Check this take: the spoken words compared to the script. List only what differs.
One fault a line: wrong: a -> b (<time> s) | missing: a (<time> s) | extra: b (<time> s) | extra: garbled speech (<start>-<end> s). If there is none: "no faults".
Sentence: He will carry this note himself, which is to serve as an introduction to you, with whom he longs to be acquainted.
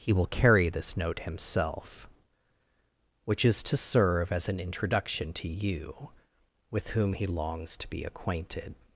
no faults